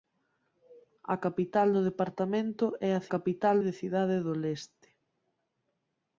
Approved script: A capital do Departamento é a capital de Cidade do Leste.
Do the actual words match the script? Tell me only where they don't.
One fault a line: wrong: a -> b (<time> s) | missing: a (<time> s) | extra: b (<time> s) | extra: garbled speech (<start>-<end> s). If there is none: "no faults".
no faults